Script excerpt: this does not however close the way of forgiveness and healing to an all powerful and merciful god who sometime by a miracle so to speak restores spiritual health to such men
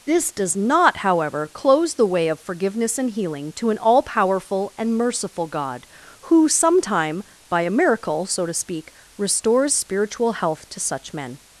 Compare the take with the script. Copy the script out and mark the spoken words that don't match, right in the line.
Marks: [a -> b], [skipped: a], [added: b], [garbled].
this does not however close the way of forgiveness and healing to an all powerful and merciful god who sometime by a miracle so to speak restores spiritual health to such men